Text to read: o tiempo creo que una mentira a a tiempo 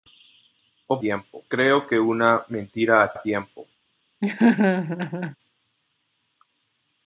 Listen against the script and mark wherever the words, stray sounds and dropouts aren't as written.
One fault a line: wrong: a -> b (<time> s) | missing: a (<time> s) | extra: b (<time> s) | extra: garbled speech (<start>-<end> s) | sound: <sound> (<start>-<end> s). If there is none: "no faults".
sound: laugh (4.2-5.4 s)